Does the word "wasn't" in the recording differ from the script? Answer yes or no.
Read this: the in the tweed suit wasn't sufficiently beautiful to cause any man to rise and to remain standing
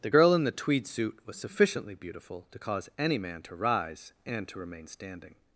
yes